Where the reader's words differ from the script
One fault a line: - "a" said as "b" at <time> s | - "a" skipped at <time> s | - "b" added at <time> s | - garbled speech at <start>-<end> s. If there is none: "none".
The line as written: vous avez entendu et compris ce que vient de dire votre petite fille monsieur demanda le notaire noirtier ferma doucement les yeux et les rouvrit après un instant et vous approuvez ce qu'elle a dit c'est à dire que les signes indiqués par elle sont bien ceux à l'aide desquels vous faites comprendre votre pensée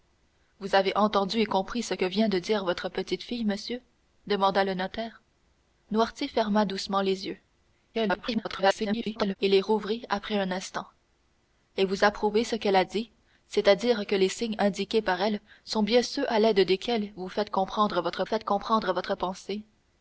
- garbled speech at 7.9-9.4 s
- "faites comprendre votre" added at 18.2 s